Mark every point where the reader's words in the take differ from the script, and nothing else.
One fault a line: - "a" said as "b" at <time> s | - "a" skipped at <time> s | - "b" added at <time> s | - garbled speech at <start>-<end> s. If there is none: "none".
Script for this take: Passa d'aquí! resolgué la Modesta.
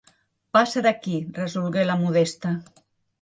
none